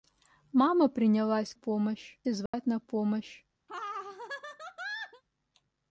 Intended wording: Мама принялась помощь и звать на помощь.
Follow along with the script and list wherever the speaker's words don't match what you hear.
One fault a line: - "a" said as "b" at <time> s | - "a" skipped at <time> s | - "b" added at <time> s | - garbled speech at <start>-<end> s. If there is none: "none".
none